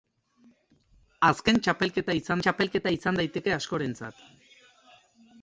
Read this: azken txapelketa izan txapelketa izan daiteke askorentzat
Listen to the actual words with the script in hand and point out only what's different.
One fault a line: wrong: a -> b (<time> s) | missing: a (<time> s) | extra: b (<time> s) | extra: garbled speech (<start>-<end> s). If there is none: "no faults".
no faults